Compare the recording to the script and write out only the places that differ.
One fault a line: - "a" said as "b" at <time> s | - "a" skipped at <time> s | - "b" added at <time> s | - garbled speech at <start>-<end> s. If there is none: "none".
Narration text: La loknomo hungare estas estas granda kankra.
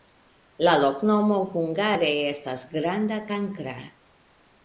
- "estas" skipped at 2.6 s